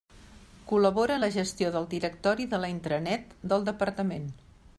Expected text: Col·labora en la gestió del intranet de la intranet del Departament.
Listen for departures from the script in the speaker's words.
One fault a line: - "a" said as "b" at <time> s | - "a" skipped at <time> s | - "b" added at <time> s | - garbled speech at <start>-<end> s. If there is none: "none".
- "intranet" said as "directori" at 1.9 s